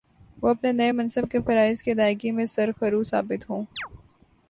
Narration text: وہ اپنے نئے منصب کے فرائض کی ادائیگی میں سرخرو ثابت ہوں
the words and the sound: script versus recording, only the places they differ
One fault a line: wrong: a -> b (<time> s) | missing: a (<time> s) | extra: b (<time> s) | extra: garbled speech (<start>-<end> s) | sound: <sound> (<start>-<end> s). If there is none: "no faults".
sound: chirp (3.8-3.9 s)